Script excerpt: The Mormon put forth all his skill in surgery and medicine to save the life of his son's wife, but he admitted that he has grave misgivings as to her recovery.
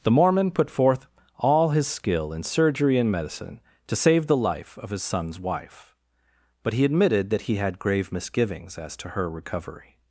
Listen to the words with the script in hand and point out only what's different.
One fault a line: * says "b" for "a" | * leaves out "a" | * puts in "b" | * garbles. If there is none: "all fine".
* says "had" for "has"